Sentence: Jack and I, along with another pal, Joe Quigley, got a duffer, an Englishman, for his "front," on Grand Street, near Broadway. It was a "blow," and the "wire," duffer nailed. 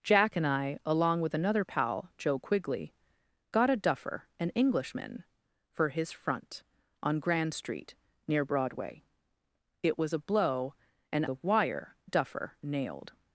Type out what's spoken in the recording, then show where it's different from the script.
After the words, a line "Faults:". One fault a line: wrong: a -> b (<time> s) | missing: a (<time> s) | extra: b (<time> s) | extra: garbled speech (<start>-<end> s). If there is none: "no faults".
Jack and I, along with another pal, Joe Quigley, got a duffer, an Englishman, for his "front," on Grand Street, near Broadway. It was a "blow," and the "wire," duffer nailed.
Faults:
no faults